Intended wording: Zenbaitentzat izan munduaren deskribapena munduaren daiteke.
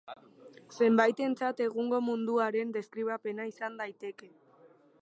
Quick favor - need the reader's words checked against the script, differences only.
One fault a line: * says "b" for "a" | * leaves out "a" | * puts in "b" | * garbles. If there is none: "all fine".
* says "egungo" for "izan"
* says "izan" for "munduaren"